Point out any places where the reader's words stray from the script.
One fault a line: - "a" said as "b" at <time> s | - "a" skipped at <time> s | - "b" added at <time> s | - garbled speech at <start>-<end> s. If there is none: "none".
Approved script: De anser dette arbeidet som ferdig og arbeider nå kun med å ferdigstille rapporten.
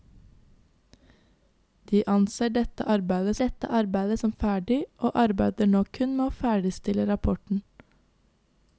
- "dette arbeidet" added at 3.4 s